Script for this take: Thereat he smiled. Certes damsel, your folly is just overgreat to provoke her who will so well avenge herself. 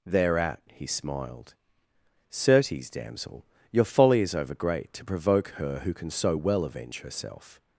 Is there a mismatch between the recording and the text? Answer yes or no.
yes